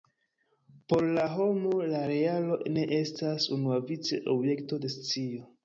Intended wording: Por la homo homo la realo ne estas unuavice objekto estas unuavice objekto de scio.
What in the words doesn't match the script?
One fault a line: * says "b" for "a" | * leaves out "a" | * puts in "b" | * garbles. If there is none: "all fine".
* leaves out "homo"
* leaves out "estas unuavice objekto"